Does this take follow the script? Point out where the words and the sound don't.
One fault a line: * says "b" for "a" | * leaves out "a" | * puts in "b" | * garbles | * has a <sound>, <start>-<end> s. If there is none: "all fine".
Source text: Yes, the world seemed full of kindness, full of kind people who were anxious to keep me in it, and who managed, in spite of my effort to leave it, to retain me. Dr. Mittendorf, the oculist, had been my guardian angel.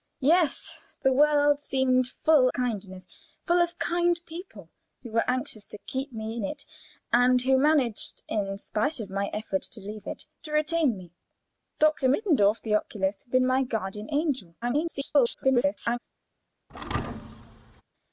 * leaves out "of"
* garbles
* has a thud, 16.7-17.8 s